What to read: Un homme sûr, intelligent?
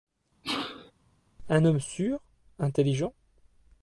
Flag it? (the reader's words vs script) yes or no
no